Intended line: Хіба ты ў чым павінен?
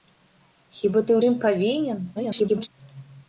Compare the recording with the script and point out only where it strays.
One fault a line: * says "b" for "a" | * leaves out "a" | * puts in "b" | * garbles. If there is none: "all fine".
* leaves out "ў"
* garbles